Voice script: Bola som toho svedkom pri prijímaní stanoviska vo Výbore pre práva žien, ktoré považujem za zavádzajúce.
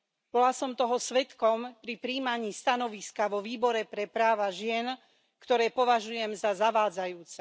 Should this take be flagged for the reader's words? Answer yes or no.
no